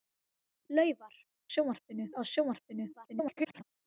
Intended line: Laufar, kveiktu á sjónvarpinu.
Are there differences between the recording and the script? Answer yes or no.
yes